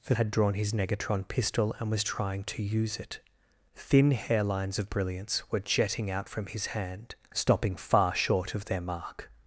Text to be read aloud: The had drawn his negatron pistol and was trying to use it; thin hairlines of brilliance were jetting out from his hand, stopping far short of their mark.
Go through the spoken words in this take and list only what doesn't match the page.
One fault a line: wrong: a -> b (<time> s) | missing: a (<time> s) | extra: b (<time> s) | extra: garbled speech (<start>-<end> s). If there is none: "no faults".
no faults